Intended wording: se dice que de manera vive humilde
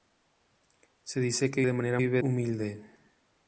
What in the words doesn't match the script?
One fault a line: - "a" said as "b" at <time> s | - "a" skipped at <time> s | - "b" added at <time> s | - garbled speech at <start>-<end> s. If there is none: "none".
none